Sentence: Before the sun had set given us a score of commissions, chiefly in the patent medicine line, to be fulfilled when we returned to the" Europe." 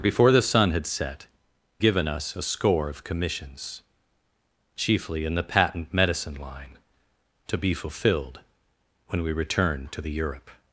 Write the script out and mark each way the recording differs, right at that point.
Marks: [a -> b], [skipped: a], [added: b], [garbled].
Before the sun had set given us a score of commissions, chiefly in the patent medicine line, to be fulfilled when we returned to the" Europe."